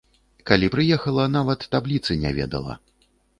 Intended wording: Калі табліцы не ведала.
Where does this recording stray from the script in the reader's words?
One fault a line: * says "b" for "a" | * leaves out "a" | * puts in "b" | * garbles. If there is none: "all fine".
* puts in "прыехала нават"